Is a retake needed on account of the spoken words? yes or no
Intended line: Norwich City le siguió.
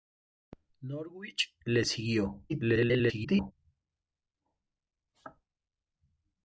yes